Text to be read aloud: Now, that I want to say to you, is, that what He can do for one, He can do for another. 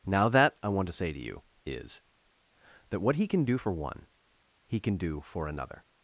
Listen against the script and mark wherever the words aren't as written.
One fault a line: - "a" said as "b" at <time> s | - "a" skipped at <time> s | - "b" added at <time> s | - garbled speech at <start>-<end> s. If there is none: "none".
none